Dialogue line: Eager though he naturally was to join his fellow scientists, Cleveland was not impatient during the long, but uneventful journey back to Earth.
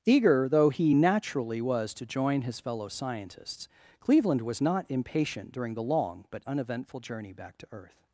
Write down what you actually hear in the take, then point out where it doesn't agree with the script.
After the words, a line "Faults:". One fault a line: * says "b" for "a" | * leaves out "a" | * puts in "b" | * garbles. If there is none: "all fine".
Eager though he naturally was to join his fellow scientists, Cleveland was not impatient during the long, but uneventful journey back to Earth.
Faults:
all fine